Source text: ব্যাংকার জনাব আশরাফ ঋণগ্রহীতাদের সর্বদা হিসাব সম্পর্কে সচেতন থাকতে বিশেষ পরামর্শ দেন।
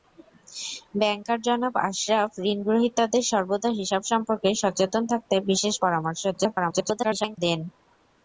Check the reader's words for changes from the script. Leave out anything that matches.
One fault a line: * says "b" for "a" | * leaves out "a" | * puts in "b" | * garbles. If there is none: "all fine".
* garbles